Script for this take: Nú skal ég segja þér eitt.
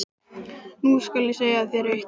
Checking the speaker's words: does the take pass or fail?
pass